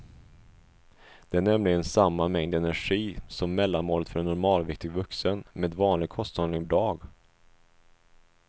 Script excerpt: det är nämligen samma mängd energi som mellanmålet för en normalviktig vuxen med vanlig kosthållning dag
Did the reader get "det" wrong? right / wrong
right